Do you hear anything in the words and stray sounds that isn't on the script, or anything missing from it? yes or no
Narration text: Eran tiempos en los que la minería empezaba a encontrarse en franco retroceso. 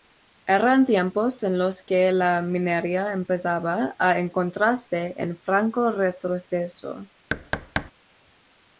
yes